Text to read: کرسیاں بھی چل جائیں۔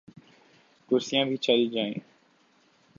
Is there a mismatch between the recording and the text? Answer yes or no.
no